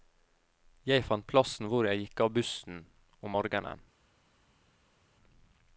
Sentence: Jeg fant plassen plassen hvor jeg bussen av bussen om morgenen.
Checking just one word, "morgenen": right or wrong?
right